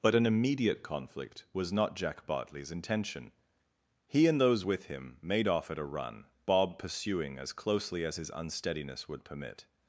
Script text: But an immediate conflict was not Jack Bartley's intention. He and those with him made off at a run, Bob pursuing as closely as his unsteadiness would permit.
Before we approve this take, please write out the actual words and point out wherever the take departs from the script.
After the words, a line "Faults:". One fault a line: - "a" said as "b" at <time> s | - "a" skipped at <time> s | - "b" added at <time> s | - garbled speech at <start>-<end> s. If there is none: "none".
But an immediate conflict was not Jack Bartley's intention. He and those with him made off at a run, Bob pursuing as closely as his unsteadiness would permit.
Faults:
none